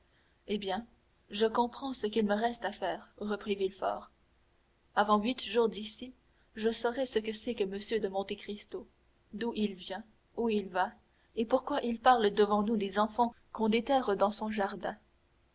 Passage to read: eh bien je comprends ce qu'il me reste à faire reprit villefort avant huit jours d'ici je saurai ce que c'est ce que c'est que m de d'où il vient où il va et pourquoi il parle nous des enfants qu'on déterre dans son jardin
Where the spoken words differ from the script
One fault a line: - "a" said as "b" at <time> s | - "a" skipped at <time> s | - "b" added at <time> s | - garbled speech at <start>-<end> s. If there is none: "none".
- "ce" skipped at 7.5 s
- "c'est que m de" said as "m de monte cristo" at 7.7 s
- "devant" added at 12.3 s